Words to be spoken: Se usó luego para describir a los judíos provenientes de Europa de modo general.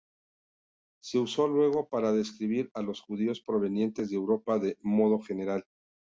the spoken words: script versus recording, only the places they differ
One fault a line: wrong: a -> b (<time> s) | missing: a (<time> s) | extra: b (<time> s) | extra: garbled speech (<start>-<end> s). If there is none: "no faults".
no faults